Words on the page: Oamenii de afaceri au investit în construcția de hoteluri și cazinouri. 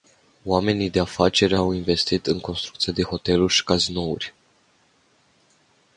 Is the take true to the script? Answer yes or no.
yes